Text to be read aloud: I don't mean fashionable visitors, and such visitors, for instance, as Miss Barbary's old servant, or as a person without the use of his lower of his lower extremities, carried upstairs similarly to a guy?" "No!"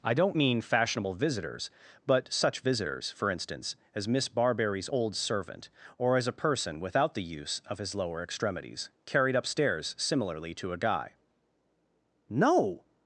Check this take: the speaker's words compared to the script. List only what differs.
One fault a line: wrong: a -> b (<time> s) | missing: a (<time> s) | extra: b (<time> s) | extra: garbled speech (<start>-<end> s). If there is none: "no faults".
wrong: and -> but (2.1 s)
missing: of his lower (8.2 s)